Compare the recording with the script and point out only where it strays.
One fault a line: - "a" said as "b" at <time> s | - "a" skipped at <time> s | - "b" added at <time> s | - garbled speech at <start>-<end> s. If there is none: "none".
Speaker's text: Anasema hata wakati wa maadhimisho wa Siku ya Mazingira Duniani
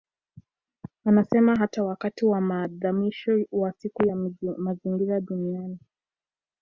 none